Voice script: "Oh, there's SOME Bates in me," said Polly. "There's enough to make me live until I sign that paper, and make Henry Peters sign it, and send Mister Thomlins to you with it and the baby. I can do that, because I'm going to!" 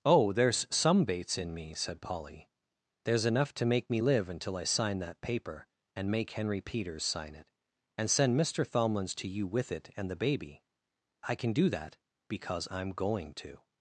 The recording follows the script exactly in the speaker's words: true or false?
true